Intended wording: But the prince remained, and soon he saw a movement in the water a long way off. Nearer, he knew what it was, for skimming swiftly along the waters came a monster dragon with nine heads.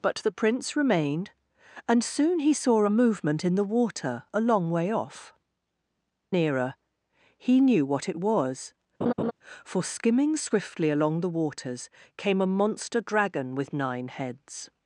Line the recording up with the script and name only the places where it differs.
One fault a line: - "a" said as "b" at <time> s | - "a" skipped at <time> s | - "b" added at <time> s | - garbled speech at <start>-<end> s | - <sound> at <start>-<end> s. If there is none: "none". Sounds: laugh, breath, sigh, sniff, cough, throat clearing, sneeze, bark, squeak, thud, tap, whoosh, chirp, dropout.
- laugh at 9.0-9.3 s